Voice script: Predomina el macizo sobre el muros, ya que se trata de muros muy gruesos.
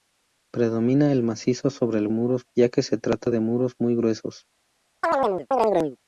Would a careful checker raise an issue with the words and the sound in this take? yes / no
yes